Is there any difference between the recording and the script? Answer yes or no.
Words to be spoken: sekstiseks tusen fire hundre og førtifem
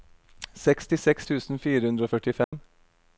no